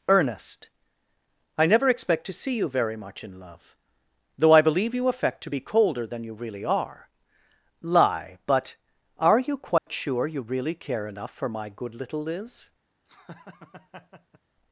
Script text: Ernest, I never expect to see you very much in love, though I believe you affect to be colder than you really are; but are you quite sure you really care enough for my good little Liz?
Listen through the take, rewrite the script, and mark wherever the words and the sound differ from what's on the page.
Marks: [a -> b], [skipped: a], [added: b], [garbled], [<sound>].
Ernest, I never expect to see you very much in love, though I believe you affect to be colder than you really are; [added: lie] but are you quite [dropout] sure you really care enough for my good little Liz? [laugh]